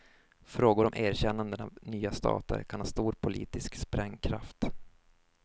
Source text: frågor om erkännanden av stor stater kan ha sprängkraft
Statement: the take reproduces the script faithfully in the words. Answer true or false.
false